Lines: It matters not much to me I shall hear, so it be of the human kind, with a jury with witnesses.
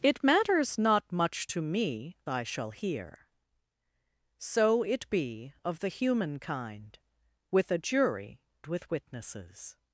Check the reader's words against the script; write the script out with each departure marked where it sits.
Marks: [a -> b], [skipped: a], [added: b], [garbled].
It matters not much to me I shall hear, so it be of the human kind, with a jury with witnesses.